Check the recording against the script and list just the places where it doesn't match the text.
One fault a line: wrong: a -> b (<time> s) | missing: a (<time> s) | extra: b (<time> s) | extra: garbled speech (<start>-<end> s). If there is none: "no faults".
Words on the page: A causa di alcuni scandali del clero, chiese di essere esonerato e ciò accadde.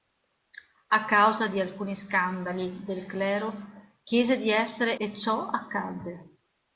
missing: esonerato (5.0 s)